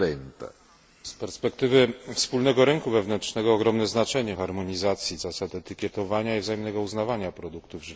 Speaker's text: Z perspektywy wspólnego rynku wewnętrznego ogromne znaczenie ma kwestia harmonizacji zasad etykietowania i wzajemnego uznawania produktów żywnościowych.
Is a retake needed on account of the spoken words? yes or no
yes